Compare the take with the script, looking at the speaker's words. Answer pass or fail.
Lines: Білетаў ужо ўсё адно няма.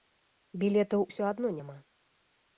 fail